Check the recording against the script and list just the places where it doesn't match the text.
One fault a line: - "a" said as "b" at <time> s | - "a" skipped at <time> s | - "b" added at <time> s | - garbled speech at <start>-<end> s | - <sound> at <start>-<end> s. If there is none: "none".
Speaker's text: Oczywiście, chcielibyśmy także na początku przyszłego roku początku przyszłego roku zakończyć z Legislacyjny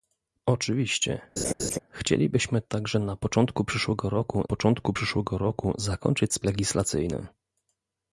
- laugh at 1.4-1.8 s